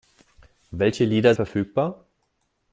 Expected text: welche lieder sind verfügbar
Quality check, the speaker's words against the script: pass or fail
fail